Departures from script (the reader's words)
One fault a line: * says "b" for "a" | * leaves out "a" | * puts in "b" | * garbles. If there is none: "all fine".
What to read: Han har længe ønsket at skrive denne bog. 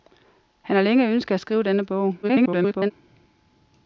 * garbles